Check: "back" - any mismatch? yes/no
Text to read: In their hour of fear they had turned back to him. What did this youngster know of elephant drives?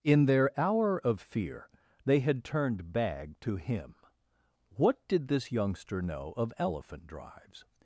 yes